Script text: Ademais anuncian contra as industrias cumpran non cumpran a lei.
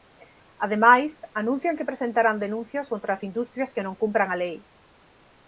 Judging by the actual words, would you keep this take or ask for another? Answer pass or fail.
fail